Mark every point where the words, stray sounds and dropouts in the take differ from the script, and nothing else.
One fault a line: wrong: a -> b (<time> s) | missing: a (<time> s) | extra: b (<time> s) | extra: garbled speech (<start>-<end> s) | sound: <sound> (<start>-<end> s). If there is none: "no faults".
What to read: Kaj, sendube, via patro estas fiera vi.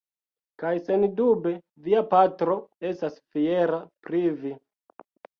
extra: pri (4.1 s)